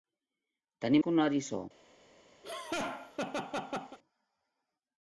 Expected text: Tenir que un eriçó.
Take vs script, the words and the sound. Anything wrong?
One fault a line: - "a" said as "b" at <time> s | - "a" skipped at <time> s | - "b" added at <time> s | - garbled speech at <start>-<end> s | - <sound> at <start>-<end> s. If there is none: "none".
- laugh at 2.4-4.0 s